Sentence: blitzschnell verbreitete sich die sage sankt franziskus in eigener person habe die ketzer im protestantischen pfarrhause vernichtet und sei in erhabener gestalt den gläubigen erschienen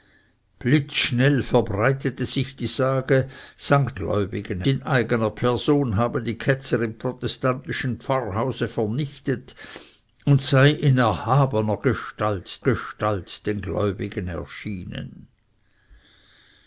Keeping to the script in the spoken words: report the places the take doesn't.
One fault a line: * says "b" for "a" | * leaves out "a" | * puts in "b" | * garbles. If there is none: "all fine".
* says "gläubigen" for "franziskus"
* puts in "gestalt"